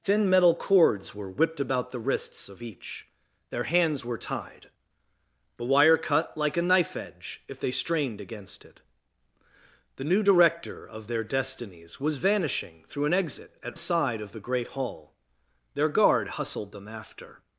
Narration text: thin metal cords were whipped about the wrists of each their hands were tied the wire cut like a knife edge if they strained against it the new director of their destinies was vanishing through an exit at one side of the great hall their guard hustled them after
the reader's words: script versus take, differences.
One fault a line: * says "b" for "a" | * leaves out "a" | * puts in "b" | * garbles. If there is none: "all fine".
* leaves out "one"